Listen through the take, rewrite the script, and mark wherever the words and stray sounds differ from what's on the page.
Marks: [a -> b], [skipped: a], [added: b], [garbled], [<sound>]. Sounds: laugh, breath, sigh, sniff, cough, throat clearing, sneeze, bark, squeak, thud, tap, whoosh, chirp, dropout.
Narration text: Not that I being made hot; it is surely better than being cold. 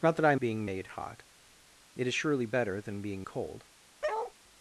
Not that I being made hot; it is surely better than being cold. [bark]